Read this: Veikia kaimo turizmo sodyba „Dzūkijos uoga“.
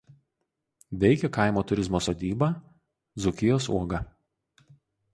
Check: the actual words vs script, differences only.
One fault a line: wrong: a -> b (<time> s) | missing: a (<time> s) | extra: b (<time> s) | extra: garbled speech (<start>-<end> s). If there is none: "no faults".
no faults